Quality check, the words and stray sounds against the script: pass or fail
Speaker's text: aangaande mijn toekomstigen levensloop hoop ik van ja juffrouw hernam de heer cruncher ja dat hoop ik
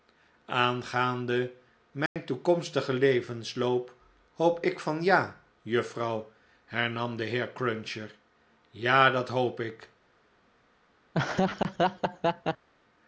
fail